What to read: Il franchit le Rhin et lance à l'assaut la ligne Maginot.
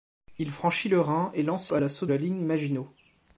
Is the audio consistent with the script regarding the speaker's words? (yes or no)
yes